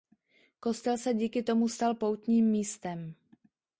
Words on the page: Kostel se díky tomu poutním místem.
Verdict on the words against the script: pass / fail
fail